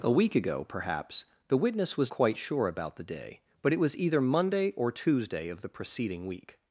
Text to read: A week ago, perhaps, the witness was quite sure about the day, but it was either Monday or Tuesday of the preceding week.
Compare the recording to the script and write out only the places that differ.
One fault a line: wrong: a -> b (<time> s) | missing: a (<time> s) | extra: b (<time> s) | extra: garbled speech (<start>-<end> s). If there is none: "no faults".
no faults